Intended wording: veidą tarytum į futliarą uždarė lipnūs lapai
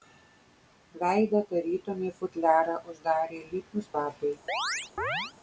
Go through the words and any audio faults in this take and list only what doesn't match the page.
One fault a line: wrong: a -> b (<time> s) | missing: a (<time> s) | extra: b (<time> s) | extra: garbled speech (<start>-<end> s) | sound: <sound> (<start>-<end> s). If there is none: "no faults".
sound: chirp (4.5-5.3 s)